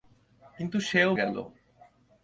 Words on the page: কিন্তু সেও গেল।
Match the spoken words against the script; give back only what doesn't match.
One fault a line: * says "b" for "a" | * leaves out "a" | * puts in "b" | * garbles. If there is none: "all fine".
all fine